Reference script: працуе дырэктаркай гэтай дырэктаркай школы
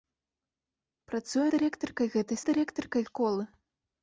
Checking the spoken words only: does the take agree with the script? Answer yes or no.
yes